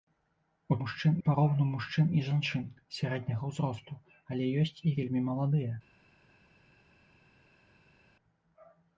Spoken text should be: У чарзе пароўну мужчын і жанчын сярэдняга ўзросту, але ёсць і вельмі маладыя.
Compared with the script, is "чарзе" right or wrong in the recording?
wrong